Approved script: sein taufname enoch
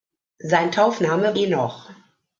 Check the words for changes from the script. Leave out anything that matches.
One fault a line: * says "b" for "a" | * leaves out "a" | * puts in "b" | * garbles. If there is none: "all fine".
all fine